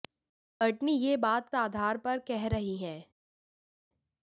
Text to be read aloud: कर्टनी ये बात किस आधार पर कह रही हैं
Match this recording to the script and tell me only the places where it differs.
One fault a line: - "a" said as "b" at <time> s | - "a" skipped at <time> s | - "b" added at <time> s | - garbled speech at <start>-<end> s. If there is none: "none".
- "किस" skipped at 1.5 s